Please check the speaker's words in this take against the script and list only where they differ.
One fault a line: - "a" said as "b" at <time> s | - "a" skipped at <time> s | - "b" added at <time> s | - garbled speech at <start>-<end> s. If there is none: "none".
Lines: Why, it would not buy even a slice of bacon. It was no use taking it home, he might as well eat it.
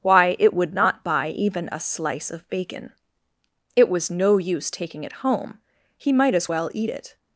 none